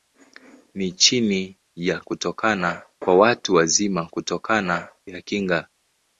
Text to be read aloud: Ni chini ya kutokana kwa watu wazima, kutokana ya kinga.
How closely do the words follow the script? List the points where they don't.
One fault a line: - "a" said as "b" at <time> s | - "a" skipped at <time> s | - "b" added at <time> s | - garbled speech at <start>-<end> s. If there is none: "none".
none